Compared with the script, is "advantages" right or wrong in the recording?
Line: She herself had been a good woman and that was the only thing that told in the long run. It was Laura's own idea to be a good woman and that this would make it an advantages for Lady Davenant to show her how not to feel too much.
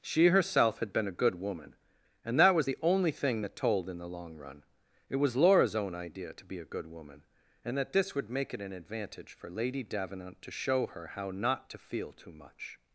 wrong